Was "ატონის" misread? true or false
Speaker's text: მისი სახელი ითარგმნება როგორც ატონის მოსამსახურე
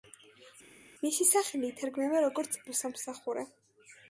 true